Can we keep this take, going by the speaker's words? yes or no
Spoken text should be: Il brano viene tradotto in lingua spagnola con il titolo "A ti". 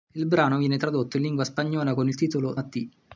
yes